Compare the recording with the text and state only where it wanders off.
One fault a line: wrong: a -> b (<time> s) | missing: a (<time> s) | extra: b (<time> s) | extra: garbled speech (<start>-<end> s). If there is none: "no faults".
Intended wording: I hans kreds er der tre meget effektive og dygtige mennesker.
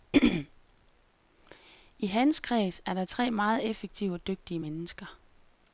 no faults